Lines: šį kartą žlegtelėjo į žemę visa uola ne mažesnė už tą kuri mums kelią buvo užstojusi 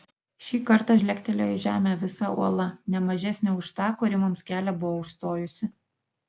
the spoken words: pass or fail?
pass